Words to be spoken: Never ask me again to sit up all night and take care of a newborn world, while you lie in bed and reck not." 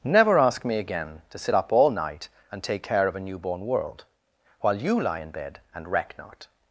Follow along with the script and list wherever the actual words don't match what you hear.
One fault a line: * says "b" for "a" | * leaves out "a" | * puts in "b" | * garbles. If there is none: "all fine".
all fine